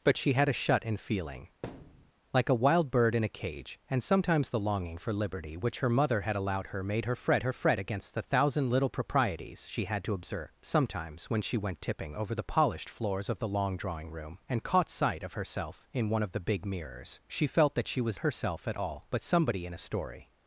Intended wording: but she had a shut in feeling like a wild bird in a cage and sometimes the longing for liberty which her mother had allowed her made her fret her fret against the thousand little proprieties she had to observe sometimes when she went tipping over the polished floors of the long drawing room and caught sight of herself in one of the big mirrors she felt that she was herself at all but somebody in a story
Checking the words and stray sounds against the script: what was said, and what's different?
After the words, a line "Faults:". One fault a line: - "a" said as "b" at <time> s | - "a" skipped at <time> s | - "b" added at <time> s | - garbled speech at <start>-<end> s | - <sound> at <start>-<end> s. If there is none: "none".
but she had a shut in feeling like a wild bird in a cage and sometimes the longing for liberty which her mother had allowed her made her fret her fret against the thousand little proprieties she had to observe sometimes when she went tipping over the polished floors of the long drawing room and caught sight of herself in one of the big mirrors she felt that she was herself at all but somebody in a story
Faults:
- thud at 1.6-2.1 s